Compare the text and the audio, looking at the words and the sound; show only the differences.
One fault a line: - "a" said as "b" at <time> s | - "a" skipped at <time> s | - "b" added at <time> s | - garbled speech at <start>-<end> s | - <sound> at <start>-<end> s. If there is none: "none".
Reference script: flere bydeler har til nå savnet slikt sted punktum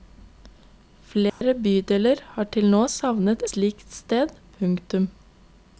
- dropout at 1.3-1.4 s